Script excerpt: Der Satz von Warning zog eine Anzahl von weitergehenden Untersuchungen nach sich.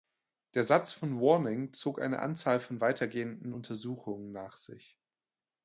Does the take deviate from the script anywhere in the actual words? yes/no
no